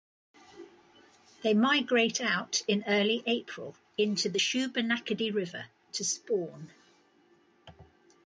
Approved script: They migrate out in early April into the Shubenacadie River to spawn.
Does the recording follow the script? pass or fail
pass